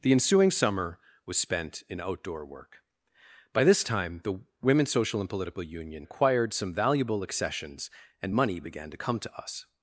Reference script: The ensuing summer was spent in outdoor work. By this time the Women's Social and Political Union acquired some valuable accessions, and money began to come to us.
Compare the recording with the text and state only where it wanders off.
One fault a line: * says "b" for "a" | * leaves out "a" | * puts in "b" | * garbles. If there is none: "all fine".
all fine